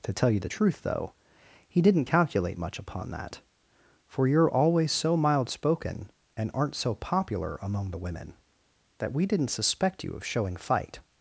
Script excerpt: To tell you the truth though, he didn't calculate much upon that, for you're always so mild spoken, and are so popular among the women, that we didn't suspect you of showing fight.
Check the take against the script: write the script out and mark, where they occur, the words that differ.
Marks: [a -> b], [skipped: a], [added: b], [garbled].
To tell you the truth though, he didn't calculate much upon that, for you're always so mild spoken, and [are -> aren't] so popular among the women, that we didn't suspect you of showing fight.